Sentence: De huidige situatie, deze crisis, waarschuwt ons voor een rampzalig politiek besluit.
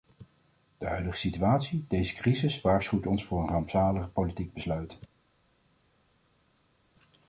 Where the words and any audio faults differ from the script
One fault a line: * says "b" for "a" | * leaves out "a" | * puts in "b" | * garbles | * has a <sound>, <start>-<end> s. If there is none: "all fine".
all fine